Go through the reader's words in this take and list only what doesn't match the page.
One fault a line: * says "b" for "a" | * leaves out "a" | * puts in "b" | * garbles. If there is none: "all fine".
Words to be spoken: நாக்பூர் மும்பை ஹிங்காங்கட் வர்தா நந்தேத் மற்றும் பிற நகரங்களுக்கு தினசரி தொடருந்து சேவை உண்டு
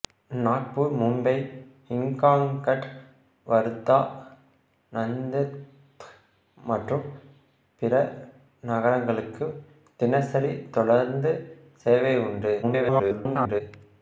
* garbles